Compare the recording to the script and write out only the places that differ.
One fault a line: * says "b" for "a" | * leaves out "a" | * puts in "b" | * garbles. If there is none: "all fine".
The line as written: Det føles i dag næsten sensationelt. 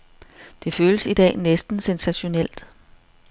all fine